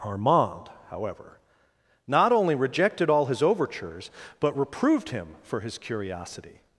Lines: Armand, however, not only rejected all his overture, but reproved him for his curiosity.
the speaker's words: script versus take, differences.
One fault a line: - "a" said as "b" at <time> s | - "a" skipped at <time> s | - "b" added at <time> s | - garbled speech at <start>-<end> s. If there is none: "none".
- "overture" said as "overtures" at 3.4 s